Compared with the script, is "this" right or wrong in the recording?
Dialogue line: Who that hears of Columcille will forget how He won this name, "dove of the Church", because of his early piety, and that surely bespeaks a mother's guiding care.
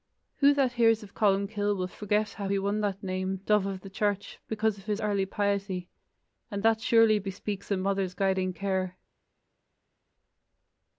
wrong